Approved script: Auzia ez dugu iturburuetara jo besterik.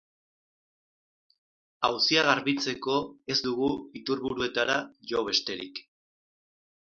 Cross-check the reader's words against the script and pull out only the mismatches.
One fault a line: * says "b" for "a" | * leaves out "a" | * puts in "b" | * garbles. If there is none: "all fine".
* puts in "garbitzeko"